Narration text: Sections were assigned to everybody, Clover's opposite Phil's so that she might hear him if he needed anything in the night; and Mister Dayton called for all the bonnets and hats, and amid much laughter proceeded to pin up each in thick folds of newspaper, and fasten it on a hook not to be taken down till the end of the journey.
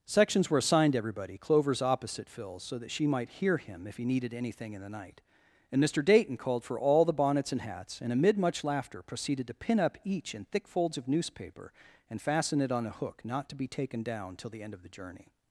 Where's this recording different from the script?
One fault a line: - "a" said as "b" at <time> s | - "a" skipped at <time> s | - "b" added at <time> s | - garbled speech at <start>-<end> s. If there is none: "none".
none